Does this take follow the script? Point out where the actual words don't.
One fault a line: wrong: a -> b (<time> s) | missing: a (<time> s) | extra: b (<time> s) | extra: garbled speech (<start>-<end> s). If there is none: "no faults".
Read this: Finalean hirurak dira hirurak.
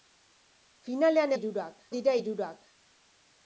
no faults